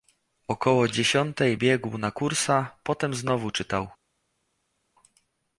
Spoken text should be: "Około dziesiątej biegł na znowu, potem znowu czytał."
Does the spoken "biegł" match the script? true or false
true